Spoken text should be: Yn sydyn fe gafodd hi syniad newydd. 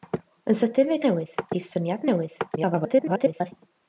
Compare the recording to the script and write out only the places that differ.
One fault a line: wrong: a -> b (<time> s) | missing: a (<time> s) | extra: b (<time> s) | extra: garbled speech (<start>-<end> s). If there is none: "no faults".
wrong: gafodd -> newydd (1.1 s)
extra: garbled speech (2.6-3.5 s)